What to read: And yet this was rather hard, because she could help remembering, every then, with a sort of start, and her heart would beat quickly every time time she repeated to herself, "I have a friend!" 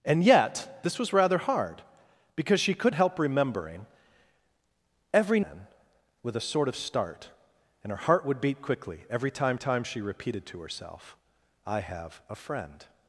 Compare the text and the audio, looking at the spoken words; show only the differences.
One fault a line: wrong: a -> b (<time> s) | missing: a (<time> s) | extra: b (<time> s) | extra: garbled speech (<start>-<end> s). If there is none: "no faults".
no faults